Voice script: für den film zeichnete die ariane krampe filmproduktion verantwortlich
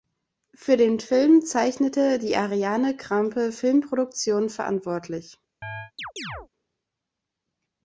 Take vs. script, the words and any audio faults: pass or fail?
fail